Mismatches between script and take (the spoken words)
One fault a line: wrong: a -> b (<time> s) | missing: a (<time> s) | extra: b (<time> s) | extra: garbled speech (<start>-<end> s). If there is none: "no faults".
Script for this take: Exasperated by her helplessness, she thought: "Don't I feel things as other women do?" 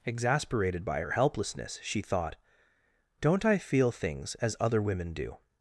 no faults